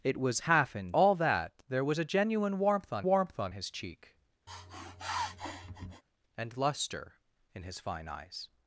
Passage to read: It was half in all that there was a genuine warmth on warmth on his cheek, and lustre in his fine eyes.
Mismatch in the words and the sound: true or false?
true